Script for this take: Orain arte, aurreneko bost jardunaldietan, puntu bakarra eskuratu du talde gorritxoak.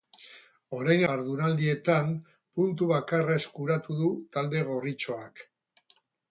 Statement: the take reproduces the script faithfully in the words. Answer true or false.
false